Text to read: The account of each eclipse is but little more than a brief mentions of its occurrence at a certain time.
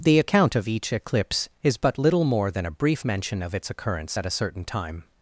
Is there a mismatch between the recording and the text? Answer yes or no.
yes